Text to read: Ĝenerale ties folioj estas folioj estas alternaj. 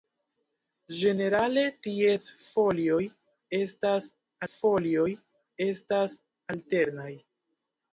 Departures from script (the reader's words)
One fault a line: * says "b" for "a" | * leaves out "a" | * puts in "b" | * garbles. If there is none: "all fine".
all fine